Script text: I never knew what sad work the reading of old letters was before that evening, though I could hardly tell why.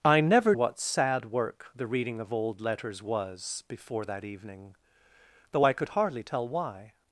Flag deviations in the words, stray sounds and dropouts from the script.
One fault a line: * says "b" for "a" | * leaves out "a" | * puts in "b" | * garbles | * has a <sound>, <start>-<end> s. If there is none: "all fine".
* leaves out "knew"